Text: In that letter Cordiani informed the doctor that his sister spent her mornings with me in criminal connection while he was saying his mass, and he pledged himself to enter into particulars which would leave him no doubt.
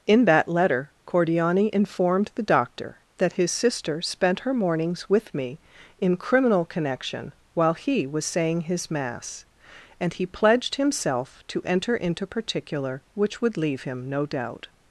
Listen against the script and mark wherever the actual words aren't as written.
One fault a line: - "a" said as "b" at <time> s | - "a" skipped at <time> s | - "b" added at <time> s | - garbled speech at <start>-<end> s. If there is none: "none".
- "particulars" said as "particular" at 12.2 s